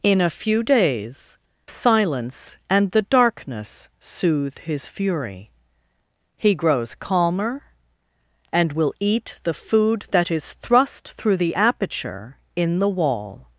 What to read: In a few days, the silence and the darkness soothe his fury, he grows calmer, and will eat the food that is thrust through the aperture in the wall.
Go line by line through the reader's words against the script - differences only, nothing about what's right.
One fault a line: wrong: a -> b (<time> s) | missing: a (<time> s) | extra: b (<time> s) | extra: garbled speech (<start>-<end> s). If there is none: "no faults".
missing: the (1.4 s)